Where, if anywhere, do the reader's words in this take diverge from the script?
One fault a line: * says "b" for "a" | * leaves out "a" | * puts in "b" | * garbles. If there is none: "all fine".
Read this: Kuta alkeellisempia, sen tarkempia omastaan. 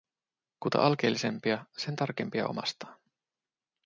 all fine